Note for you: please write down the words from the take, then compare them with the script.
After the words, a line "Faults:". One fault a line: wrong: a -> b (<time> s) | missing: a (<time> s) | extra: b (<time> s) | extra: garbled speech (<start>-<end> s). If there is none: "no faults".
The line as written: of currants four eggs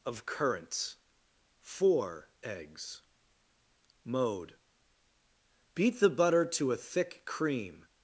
of currants four eggs mode beat the butter to a thick cream
Faults:
extra: mode beat the butter to a thick cream (4.0 s)